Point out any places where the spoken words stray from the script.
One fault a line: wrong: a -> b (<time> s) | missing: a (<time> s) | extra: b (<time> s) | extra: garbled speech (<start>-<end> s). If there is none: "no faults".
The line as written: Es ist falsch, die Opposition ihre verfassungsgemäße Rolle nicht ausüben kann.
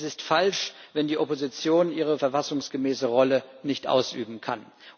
extra: wenn (0.9 s)